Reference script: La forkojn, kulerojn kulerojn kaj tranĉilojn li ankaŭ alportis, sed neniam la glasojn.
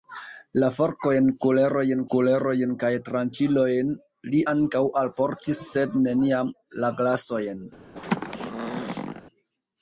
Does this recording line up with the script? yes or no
yes